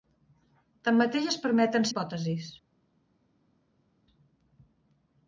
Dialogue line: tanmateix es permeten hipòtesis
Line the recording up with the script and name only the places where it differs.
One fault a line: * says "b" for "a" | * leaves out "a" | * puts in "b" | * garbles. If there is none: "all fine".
all fine